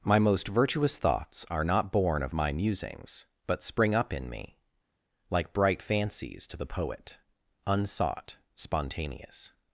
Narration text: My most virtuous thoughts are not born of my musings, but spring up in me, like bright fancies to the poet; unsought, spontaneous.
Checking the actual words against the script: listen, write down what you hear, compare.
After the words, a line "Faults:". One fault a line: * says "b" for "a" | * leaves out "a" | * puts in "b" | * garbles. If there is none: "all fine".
My most virtuous thoughts are not born of my musings, but spring up in me, like bright fancies to the poet; unsought, spontaneous.
Faults:
all fine